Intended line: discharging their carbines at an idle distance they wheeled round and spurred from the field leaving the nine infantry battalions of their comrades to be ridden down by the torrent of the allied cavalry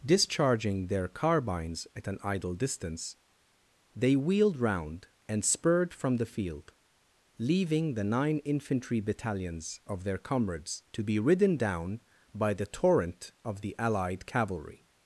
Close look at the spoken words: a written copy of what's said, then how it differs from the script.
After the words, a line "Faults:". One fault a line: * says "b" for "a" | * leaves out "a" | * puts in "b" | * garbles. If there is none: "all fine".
discharging their carbines at an idle distance they wheeled round and spurred from the field leaving the nine infantry battalions of their comrades to be ridden down by the torrent of the allied cavalry
Faults:
all fine